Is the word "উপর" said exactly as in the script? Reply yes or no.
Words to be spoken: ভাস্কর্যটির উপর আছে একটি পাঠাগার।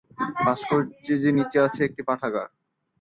no